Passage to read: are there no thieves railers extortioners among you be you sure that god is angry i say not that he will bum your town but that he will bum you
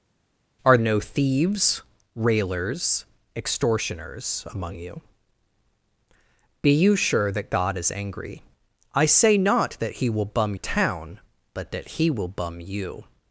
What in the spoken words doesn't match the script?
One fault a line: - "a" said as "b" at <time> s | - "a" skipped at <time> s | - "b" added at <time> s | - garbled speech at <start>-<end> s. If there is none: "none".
- "there" skipped at 0.8 s
- "your" skipped at 10.5 s